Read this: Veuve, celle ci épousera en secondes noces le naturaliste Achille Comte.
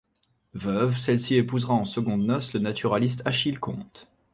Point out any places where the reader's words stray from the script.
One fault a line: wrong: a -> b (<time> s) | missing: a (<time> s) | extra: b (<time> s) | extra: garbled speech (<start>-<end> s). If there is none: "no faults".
no faults